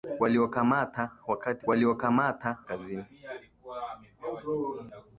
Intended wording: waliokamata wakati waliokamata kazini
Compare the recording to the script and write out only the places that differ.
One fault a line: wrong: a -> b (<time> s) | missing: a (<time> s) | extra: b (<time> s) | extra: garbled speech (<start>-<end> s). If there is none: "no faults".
no faults